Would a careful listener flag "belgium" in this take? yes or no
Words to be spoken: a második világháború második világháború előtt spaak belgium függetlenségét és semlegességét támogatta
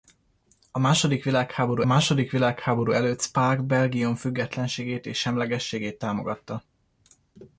no